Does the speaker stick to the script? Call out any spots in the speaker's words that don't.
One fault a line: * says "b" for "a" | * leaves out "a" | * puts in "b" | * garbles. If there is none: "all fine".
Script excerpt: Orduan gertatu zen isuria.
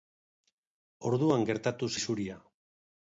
* leaves out "zen"